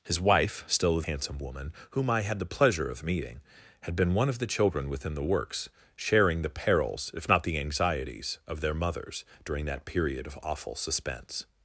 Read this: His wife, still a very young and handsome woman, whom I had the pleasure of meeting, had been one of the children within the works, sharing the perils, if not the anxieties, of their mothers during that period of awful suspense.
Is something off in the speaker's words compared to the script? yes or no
yes